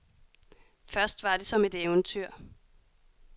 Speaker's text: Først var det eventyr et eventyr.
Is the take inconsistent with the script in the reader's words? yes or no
yes